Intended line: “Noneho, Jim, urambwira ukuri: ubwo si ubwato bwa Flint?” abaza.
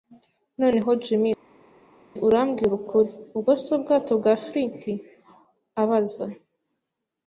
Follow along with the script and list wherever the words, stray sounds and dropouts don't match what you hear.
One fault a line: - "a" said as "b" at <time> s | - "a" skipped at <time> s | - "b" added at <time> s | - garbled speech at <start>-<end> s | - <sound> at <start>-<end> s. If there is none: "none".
none